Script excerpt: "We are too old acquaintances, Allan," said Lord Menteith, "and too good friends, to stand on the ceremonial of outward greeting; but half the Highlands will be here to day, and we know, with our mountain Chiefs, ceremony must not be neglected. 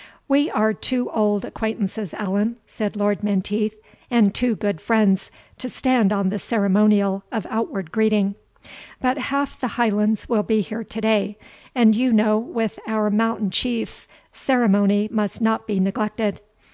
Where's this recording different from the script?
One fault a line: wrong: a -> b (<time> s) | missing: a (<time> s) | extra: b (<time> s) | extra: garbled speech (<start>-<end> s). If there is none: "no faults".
wrong: we -> you (11.9 s)